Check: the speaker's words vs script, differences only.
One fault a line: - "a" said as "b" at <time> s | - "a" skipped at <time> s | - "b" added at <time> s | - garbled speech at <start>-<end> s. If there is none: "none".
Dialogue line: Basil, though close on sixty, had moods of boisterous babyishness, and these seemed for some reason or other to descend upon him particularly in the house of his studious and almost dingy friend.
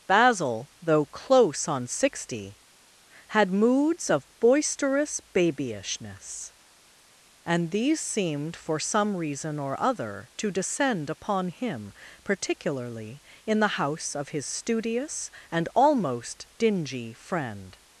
none